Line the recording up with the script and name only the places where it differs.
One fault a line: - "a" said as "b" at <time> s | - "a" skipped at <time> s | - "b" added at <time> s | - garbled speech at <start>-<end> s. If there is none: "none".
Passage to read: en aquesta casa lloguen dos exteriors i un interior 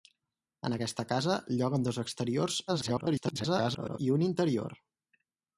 - garbled speech at 2.7-4.0 s